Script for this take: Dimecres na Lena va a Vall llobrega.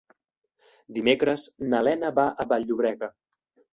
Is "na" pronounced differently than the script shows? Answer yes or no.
no